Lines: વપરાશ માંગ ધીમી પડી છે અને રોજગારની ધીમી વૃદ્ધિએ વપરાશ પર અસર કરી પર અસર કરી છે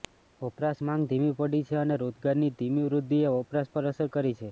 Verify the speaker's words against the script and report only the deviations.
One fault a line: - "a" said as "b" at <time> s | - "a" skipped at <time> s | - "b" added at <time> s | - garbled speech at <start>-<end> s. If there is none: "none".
- "પર અસર કરી" skipped at 4.4 s